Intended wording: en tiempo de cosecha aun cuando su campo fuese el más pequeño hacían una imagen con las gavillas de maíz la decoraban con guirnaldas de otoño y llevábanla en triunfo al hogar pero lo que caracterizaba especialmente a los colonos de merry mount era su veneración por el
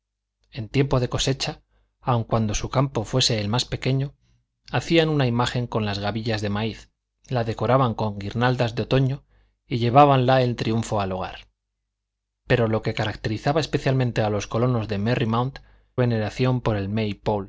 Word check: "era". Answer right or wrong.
wrong